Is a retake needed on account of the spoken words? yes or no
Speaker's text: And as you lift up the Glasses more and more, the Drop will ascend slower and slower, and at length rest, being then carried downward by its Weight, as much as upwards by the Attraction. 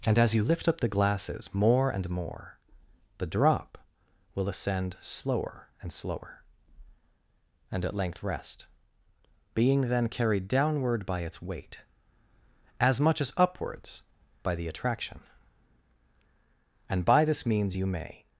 yes